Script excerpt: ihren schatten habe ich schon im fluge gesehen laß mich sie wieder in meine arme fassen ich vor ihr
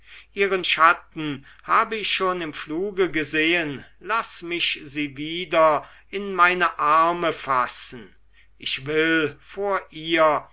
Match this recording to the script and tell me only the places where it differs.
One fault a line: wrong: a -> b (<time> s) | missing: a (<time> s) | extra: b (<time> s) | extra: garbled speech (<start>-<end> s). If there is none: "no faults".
extra: will (8.9 s)